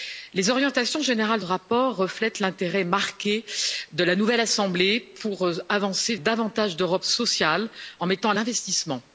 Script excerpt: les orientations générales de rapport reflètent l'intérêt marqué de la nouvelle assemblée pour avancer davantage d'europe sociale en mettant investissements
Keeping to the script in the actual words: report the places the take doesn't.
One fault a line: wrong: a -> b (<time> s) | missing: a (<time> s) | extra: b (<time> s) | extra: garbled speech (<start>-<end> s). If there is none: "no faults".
no faults